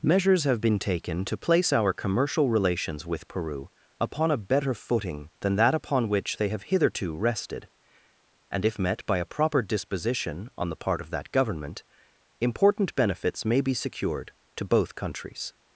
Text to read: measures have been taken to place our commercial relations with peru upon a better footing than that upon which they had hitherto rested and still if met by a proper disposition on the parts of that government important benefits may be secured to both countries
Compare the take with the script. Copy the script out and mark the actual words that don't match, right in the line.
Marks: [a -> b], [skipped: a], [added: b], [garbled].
measures have been taken to place our commercial relations with peru upon a better footing than that upon which they [had -> have] hitherto rested and [skipped: still] if met by a proper disposition on the [parts -> part] of that government important benefits may be secured to both countries